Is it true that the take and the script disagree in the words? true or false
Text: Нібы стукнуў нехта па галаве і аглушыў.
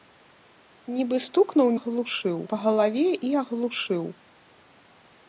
true